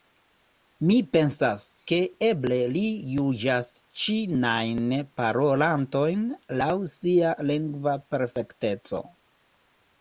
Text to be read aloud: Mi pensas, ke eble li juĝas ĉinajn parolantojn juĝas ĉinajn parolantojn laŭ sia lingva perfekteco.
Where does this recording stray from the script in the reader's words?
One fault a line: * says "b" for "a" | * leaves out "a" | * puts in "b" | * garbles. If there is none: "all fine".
* leaves out "juĝas ĉinajn parolantojn"